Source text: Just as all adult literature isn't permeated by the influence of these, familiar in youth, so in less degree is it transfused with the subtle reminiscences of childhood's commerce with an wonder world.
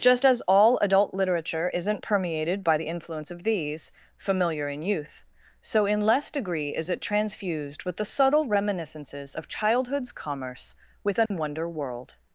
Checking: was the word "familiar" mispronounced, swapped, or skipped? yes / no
no